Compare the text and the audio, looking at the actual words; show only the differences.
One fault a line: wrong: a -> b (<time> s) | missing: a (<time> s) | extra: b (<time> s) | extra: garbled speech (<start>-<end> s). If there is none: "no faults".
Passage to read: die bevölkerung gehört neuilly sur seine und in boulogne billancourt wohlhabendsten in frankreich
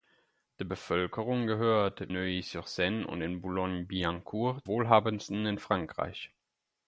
no faults